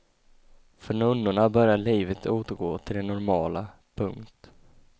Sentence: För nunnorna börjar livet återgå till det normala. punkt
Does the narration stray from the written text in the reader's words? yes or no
no